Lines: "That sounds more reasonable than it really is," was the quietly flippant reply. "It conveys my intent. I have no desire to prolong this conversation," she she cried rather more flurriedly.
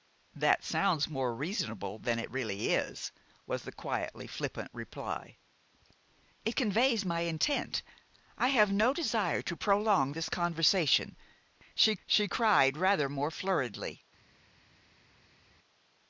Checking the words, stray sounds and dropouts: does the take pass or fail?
pass